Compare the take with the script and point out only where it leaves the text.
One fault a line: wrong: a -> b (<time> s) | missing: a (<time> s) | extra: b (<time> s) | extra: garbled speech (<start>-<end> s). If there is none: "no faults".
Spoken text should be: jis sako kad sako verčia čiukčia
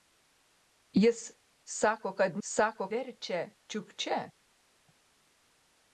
no faults